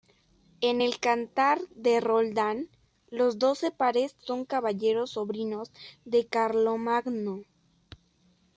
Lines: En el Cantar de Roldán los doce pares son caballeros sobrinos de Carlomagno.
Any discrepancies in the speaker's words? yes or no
no